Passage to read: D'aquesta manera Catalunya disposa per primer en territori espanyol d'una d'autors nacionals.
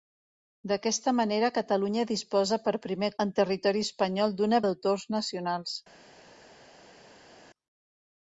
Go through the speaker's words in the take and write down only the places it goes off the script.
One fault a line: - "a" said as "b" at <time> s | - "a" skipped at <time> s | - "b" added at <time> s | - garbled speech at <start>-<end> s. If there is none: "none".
none